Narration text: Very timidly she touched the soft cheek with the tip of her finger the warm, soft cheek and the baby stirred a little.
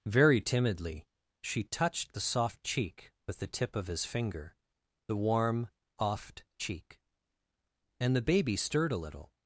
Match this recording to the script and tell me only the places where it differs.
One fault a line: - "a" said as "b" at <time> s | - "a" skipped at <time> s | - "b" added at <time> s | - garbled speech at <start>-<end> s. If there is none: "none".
- "her" said as "his" at 3.9 s
- "soft" said as "oft" at 6.0 s